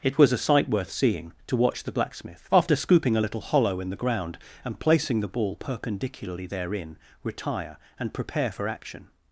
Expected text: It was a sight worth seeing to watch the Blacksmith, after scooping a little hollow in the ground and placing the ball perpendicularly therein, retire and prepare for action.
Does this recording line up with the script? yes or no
yes